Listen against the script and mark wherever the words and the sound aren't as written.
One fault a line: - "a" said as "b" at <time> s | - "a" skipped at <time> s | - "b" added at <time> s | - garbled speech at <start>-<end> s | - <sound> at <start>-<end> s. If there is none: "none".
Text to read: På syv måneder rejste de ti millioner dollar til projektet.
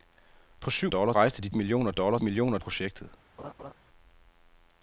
- "måneder" said as "dollar" at 0.9 s
- "ti" skipped at 1.5 s
- "til" said as "millioner" at 2.2 s
- laugh at 3.4-3.7 s